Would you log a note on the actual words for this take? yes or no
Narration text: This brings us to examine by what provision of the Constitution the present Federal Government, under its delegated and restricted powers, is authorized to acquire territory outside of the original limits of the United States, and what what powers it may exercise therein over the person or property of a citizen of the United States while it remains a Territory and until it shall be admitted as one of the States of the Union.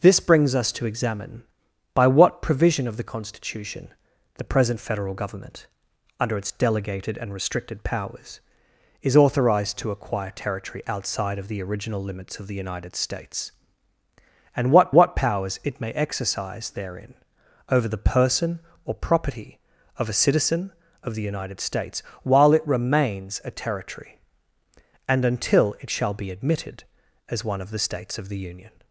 no